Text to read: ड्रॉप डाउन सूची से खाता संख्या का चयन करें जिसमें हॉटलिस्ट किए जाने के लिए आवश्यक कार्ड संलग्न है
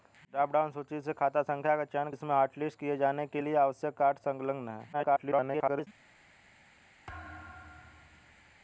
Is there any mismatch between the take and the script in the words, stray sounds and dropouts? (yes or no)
yes